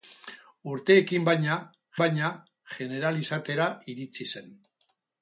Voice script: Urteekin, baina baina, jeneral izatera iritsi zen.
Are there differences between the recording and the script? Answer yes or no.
no